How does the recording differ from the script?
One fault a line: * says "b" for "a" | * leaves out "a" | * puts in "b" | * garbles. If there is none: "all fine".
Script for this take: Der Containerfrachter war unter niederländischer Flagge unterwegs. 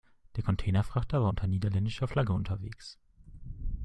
all fine